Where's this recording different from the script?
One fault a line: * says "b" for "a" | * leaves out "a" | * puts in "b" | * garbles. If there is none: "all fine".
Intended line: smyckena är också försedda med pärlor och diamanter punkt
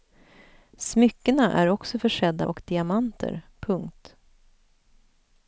* leaves out "med pärlor"